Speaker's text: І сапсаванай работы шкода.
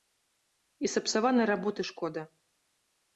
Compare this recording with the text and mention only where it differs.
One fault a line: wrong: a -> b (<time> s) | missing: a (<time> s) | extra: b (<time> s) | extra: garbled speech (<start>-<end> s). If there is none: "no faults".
no faults